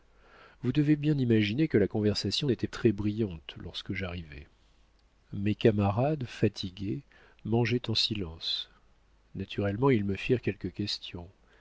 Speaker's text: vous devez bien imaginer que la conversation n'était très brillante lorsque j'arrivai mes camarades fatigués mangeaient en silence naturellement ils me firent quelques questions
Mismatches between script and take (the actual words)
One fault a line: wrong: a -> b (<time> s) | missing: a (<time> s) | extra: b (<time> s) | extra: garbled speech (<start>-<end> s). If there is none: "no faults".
no faults